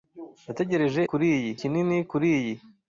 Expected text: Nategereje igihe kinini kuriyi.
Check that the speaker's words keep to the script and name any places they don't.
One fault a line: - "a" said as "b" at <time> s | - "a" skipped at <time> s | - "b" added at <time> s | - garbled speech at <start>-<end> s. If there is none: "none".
- "igihe" said as "kuriyi" at 1.1 s